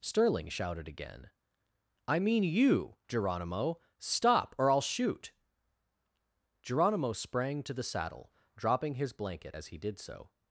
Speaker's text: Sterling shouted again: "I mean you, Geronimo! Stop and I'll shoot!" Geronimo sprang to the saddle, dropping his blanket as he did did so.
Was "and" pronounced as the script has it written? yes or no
no